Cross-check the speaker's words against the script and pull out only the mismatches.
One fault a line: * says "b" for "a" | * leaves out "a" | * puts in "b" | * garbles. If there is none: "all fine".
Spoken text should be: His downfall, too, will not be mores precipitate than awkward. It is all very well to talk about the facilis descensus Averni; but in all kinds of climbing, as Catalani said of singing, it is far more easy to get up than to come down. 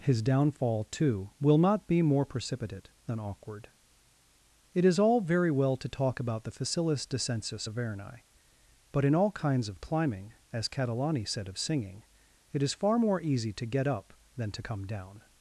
* says "more" for "mores"